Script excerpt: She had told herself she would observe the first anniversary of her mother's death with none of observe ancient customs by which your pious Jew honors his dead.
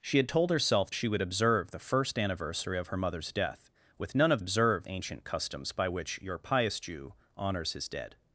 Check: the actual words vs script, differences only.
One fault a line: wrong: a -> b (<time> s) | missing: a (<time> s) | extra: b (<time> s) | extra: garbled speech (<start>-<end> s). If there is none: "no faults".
no faults